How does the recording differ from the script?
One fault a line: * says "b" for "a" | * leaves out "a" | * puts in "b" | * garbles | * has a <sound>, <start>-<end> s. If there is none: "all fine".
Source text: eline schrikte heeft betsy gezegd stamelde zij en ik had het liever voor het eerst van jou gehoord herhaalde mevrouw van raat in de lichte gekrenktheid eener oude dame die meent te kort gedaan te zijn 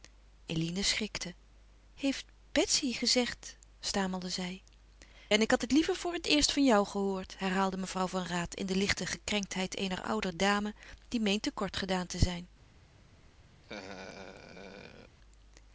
* has a laugh, 13.6-15.2 s